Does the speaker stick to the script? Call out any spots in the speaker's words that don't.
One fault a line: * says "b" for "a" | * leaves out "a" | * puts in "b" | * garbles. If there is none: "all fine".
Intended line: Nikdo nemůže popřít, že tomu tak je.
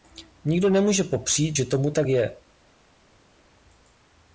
all fine